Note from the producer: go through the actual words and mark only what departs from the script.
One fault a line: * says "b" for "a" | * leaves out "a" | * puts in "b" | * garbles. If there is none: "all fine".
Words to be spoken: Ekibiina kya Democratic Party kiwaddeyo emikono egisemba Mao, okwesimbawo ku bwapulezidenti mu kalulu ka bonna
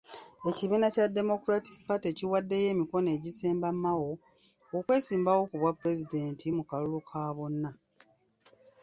all fine